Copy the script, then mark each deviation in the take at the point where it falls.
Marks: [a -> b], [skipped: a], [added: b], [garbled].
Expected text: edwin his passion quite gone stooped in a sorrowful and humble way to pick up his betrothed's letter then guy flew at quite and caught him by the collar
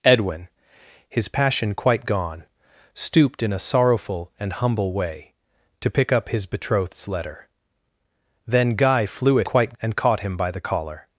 edwin his passion quite gone stooped in a sorrowful and humble way to pick up his betrothed's letter then guy flew at quite and caught him by the collar